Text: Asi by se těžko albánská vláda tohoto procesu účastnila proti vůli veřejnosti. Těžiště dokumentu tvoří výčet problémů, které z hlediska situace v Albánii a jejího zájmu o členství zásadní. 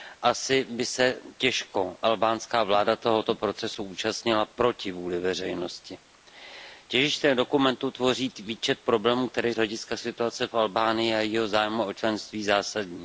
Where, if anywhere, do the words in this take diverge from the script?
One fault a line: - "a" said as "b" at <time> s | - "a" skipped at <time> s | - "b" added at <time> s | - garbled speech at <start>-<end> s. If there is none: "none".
none